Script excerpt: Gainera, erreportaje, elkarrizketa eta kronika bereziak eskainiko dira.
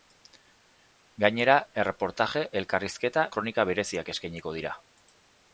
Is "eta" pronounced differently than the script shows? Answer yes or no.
yes